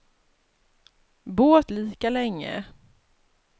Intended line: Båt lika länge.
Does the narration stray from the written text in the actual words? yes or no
no